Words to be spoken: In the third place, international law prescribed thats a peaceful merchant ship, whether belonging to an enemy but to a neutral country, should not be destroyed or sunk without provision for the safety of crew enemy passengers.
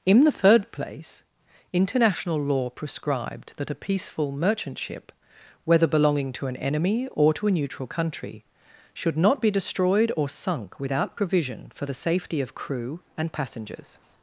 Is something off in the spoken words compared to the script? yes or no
yes